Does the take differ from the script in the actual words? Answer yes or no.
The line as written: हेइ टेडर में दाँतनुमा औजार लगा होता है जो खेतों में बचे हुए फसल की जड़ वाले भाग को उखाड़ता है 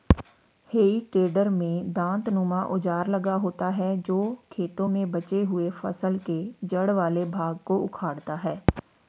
yes